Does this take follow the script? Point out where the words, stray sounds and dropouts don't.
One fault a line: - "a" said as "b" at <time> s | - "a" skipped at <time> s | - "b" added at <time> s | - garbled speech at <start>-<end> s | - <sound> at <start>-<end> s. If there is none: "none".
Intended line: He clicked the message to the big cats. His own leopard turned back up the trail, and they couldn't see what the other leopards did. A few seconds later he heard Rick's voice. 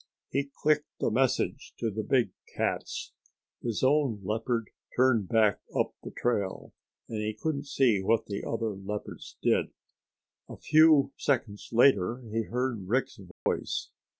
- "they" said as "he" at 7.2 s
- dropout at 13.3-13.5 s